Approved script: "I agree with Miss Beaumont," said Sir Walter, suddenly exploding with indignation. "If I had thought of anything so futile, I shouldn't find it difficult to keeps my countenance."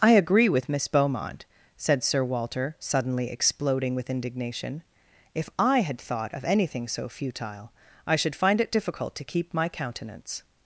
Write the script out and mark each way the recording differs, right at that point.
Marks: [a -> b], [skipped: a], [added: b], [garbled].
"I agree with Miss Beaumont," said Sir Walter, suddenly exploding with indignation. "If I had thought of anything so futile, I [shouldn't -> should] find it difficult to [keeps -> keep] my countenance."